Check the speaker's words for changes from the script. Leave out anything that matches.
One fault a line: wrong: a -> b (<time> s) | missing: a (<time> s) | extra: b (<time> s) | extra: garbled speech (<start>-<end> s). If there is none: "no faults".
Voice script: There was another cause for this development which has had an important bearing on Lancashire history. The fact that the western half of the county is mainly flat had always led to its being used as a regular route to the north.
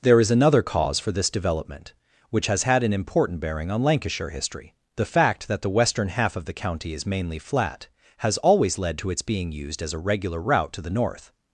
wrong: was -> is (0.2 s)
wrong: had -> has (8.2 s)